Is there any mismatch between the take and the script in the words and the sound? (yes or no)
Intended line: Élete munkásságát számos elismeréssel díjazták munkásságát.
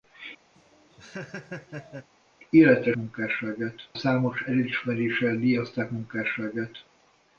yes